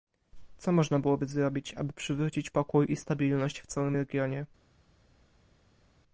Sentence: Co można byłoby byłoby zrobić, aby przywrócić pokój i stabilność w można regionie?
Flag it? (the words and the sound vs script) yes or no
yes